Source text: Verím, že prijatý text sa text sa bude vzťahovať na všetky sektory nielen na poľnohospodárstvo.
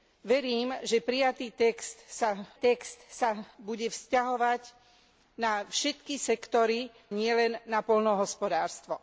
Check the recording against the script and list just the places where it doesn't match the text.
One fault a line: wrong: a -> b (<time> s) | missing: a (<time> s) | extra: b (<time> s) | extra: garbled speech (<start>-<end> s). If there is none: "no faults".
no faults